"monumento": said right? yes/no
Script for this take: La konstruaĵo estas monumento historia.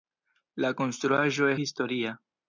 no